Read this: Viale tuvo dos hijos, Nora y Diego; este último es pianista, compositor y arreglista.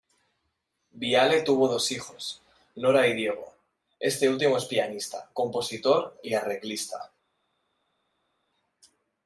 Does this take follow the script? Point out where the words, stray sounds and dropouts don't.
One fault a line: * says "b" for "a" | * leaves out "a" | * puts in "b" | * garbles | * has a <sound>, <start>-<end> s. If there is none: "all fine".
all fine